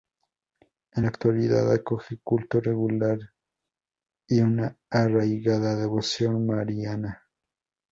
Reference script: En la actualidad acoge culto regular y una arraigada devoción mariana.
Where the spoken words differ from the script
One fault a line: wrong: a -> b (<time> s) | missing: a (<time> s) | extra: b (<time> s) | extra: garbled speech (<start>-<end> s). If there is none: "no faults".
no faults